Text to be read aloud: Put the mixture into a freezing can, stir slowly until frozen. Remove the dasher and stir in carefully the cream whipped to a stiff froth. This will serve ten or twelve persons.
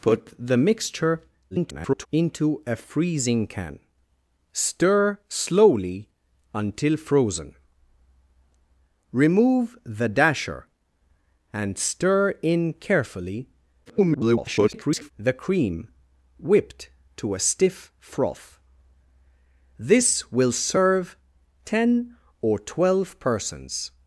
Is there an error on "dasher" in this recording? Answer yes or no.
no